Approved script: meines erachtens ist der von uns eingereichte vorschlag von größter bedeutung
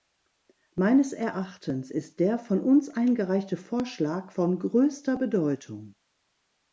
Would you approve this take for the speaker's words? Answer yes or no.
yes